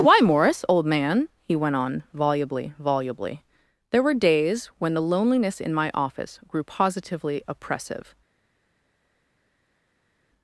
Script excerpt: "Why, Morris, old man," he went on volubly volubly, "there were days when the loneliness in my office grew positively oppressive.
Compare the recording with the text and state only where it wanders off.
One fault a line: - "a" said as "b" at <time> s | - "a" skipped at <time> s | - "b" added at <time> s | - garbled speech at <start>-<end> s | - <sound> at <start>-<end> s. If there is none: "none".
none